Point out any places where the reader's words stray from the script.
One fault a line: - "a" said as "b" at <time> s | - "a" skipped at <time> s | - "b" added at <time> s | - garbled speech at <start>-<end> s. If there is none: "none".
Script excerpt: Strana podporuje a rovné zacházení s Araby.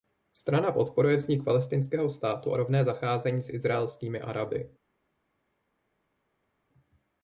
- "vznik palestinského státu" added at 1.2 s
- "izraelskými" added at 3.5 s